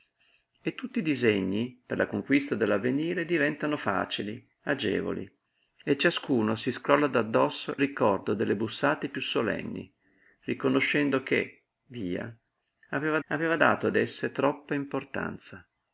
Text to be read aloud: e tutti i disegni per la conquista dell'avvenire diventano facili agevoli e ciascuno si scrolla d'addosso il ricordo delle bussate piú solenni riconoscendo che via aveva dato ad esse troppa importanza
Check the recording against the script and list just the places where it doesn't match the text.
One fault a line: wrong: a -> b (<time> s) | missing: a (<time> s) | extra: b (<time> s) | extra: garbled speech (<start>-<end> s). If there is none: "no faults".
missing: il (7.8 s)
extra: aveva (13.3 s)